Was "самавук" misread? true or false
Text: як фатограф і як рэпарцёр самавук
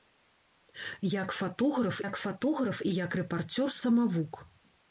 false